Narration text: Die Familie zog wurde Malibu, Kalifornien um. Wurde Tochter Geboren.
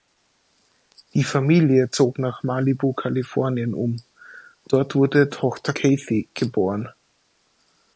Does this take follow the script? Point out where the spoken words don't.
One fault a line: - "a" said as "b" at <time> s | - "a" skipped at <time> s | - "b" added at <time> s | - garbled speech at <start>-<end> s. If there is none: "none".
- "wurde" said as "nach" at 2.2 s
- "Dort" added at 4.7 s
- "Kathy" added at 5.7 s